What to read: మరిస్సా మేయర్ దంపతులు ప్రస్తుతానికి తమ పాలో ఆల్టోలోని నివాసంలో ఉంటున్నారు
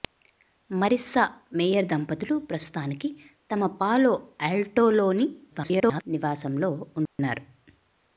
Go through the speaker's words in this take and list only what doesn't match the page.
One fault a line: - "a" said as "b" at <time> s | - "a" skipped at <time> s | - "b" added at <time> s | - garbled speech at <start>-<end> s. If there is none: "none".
- garbled speech at 5.5-6.0 s